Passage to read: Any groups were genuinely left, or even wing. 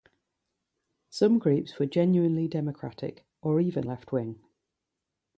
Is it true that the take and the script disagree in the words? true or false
true